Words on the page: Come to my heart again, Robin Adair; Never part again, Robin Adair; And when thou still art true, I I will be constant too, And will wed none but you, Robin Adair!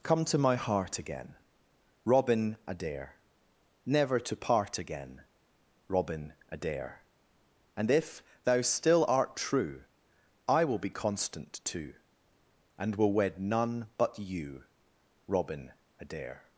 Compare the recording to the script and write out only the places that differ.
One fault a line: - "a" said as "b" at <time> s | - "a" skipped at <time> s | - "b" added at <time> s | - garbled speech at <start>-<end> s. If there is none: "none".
- "to" added at 4.2 s
- "when" said as "if" at 7.9 s
- "I" skipped at 10.6 s